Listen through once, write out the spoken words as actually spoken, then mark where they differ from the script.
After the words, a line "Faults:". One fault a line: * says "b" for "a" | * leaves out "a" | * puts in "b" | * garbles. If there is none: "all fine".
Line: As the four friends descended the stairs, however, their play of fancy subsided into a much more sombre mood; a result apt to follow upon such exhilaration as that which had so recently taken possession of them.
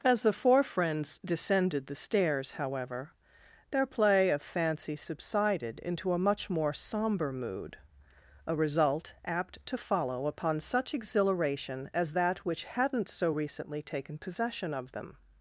As the four friends descended the stairs, however, their play of fancy subsided into a much more sombre mood; a result apt to follow upon such exhilaration as that which hadn't so recently taken possession of them.
Faults:
* says "hadn't" for "had"